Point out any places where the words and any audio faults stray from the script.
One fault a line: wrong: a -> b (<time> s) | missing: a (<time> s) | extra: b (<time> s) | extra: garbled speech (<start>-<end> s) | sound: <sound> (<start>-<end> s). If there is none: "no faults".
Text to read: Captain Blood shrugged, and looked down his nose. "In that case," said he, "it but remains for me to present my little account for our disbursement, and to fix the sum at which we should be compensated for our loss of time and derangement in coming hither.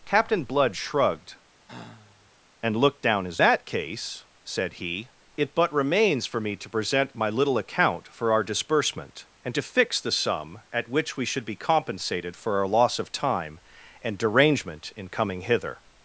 sound: sigh (1.6-2.3 s)
missing: nose In (3.4 s)